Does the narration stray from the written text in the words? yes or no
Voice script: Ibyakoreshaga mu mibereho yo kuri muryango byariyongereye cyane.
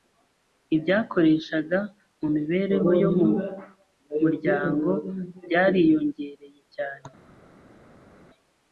yes